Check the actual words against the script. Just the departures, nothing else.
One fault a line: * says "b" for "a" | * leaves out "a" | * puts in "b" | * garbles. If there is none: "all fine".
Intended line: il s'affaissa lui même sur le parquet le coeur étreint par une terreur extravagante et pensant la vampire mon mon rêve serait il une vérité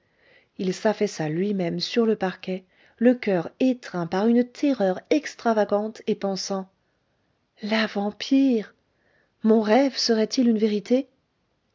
* leaves out "mon"